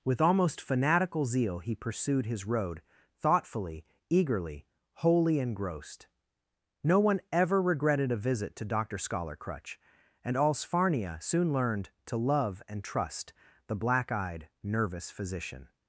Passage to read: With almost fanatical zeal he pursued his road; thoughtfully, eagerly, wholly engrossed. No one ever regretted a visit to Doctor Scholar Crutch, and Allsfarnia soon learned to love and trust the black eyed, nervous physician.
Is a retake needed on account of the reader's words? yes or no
no